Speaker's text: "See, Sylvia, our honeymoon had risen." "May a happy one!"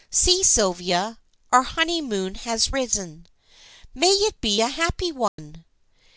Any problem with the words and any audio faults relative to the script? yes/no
yes